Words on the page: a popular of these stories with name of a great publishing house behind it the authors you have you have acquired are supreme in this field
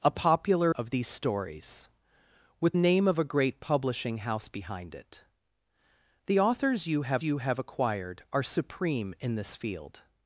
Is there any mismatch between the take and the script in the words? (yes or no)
no